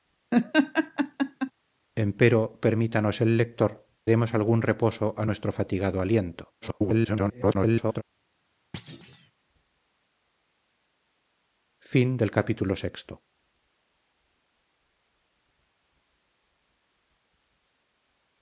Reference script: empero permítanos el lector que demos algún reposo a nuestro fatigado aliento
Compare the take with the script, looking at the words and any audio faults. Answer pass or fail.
fail